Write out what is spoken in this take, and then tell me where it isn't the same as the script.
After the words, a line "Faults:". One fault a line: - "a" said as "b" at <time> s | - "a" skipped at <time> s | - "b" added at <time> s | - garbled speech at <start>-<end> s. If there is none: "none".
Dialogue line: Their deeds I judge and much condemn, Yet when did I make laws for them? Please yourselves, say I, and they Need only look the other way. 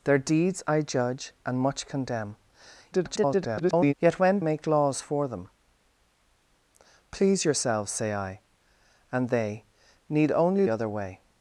Their deeds I judge and much condemn, [garbled] Yet when make laws for them? Please yourselves, say I, and they Need only other way.
Faults:
- garbled speech at 2.9-3.9 s
- "did I" skipped at 4.4 s
- "look the" skipped at 10.7 s